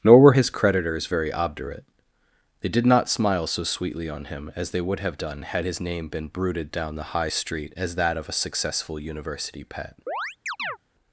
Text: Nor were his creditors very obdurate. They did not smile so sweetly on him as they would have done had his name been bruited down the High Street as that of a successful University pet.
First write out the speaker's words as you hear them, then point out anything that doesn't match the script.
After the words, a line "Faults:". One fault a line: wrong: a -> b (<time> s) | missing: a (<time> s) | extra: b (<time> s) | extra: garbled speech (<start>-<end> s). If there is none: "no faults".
Nor were his creditors very obdurate. They did not smile so sweetly on him as they would have done had his name been bruited down the High Street as that of a successful University pet.
Faults:
no faults